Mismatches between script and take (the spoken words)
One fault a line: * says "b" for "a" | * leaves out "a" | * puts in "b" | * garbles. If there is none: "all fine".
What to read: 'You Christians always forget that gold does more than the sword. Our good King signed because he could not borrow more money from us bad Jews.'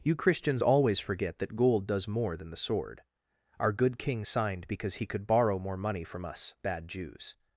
* leaves out "not"